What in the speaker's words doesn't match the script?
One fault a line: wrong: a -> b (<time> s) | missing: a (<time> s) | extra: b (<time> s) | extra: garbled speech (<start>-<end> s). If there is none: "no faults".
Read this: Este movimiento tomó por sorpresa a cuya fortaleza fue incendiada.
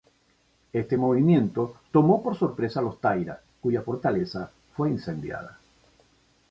extra: los Taira (2.8 s)